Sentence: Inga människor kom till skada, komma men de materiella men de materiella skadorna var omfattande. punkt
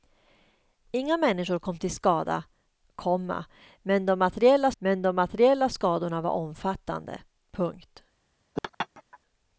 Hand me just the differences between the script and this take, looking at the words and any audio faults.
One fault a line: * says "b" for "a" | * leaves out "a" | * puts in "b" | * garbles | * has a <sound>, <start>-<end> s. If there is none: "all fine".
* has a laugh, 8.6-9.2 s